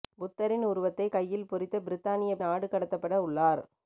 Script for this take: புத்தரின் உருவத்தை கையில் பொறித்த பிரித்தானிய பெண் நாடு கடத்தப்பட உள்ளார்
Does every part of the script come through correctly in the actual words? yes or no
no